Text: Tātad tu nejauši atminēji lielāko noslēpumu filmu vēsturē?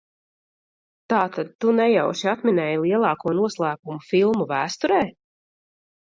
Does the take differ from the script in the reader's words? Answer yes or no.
no